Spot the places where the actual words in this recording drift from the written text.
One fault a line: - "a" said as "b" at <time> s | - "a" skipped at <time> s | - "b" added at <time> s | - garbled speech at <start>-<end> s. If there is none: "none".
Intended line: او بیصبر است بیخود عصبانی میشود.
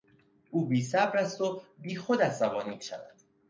- "و" added at 1.4 s